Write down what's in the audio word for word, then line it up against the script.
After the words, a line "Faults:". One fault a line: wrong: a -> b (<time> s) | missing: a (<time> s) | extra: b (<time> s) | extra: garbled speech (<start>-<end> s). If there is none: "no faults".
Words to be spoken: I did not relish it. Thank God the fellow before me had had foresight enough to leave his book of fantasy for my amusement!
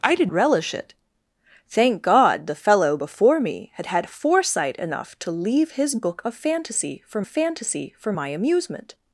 I did relish it. Thank God the fellow before me had had foresight enough to leave his book of fantasy for fantasy for my amusement!
Faults:
missing: not (0.3 s)
extra: fantasy for (7.2 s)